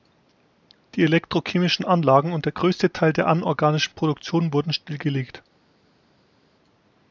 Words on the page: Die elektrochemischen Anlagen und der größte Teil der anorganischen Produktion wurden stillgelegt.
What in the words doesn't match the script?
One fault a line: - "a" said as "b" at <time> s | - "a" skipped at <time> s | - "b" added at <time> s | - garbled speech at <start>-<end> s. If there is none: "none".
none